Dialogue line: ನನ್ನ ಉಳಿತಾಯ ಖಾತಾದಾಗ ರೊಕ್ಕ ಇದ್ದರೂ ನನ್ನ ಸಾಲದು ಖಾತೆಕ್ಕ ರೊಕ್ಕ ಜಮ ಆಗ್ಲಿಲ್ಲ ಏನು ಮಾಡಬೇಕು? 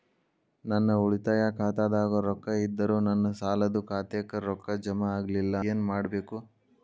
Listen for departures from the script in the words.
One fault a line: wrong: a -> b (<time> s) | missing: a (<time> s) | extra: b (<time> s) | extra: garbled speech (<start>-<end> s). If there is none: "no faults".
no faults